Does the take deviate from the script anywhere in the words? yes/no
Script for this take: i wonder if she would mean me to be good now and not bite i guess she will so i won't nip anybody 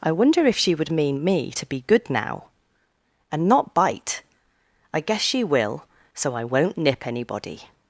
no